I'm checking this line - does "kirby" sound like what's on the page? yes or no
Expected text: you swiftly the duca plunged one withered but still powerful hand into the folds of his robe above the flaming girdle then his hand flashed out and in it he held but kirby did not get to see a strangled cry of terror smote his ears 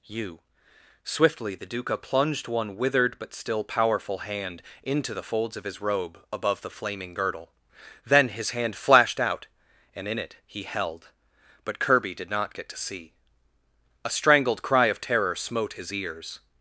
yes